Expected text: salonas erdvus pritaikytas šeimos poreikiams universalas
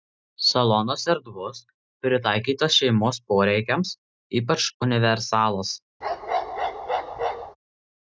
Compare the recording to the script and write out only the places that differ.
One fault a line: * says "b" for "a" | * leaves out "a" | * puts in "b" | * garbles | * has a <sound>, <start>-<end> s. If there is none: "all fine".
* puts in "ypač"
* has a bark, 6.0-7.6 s